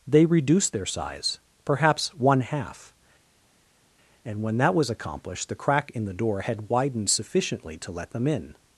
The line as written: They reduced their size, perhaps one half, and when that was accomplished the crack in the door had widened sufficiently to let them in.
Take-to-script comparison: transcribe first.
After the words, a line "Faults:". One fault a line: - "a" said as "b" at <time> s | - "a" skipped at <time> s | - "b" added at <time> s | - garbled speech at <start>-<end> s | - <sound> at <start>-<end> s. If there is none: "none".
They reduced their size, perhaps one half, and when that was accomplished the crack in the door had widened sufficiently to let them in.
Faults:
none